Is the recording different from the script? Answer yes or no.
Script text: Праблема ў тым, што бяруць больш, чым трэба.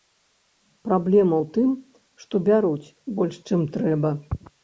no